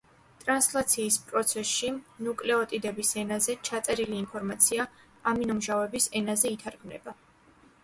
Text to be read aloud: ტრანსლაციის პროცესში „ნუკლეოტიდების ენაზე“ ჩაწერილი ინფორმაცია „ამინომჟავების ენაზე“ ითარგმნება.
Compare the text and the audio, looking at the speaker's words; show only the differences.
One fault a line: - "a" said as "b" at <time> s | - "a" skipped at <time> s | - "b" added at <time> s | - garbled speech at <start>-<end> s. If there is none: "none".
none